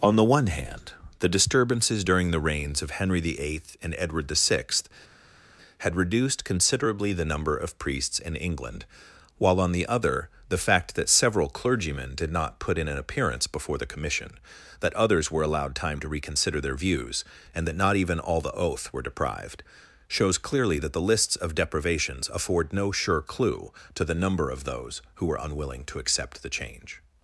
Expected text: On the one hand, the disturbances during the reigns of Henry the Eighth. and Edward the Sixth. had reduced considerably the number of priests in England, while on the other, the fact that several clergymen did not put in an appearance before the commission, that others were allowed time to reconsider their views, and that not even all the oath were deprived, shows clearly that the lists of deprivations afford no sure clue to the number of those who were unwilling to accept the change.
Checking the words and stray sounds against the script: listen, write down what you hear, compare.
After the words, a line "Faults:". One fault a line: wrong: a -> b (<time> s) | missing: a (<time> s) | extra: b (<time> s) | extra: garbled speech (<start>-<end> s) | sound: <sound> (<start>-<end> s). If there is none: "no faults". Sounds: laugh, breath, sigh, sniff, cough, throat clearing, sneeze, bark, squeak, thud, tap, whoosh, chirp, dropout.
On the one hand, the disturbances during the reigns of Henry the Eighth. and Edward the Sixth. had reduced considerably the number of priests in England, while on the other, the fact that several clergymen did not put in an appearance before the commission, that others were allowed time to reconsider their views, and that not even all the oath were deprived, shows clearly that the lists of deprivations afford no sure clue to the number of those who were unwilling to accept the change.
Faults:
no faults